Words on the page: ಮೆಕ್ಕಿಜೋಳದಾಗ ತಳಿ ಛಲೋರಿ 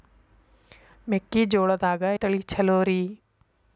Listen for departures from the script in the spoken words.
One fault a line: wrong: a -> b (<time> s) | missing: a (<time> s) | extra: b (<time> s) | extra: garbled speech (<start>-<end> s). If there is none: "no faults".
no faults